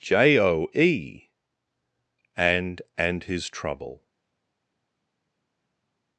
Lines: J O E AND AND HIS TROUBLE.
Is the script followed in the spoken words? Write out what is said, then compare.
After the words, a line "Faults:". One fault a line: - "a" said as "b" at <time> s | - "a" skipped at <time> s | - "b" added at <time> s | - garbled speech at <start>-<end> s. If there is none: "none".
J O E AND AND HIS TROUBLE.
Faults:
none